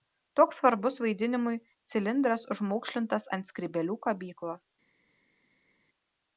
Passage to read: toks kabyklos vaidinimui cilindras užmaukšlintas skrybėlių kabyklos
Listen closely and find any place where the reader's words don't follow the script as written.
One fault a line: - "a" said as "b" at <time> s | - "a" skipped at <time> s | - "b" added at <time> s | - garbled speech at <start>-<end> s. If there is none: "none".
- "kabyklos" said as "svarbus" at 0.6 s
- "ant" added at 3.4 s